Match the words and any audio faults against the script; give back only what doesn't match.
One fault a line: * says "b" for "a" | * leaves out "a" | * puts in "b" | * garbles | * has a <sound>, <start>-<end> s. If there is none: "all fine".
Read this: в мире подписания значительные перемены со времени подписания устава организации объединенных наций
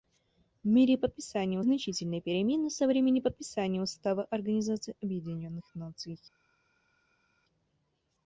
all fine